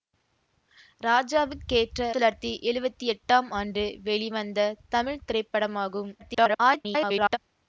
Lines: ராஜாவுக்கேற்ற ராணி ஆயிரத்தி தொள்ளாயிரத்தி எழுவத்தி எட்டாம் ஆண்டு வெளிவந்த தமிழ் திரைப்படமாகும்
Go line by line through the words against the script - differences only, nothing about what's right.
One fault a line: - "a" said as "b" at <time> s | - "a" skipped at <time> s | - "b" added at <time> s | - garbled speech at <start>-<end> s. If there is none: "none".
- "ராணி ஆயிரத்தி" skipped at 2.1 s
- garbled speech at 6.2-7.4 s